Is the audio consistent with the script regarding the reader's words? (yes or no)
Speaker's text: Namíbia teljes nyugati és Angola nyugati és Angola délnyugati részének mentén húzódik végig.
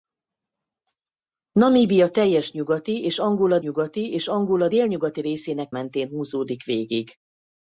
yes